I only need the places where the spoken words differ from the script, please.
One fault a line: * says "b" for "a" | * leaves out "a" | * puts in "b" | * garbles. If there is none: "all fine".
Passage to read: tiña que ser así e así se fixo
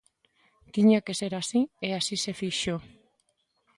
all fine